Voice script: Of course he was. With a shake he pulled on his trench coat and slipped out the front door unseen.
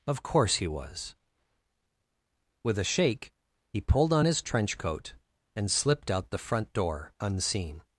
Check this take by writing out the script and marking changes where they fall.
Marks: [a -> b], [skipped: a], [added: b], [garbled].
Of course he was. With a shake he pulled on his trench coat and slipped out the front door unseen.